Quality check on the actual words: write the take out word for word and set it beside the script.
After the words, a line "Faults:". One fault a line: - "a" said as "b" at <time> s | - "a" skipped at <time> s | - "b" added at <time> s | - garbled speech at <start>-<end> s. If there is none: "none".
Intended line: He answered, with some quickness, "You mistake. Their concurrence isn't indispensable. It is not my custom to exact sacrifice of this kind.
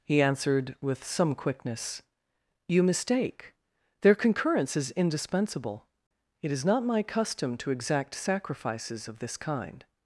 He answered, with some quickness, "You mistake. Their concurrence is indispensable. It is not my custom to exact sacrifices of this kind.
Faults:
- "isn't" said as "is" at 4.8 s
- "sacrifice" said as "sacrifices" at 8.2 s